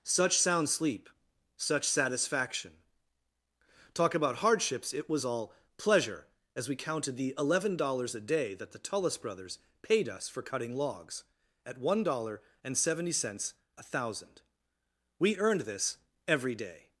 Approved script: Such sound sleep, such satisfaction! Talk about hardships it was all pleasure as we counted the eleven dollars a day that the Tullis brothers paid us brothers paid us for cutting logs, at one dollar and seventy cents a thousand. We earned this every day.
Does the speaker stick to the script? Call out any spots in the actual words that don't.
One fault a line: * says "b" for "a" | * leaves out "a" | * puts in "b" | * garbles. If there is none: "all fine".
* leaves out "brothers paid us"